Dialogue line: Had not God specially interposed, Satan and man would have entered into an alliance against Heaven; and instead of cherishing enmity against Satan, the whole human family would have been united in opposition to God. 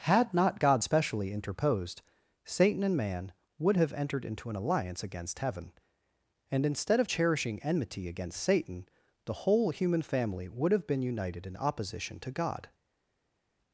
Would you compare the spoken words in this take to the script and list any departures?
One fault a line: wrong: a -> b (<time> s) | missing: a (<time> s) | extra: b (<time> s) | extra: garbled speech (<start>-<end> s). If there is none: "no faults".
no faults